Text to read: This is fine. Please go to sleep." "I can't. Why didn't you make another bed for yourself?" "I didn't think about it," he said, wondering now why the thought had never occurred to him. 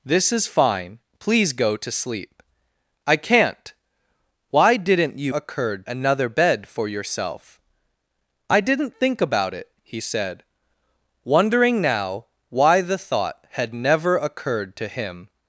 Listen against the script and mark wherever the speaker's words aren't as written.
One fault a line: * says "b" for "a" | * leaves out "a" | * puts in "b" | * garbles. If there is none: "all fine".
* says "occurred" for "make"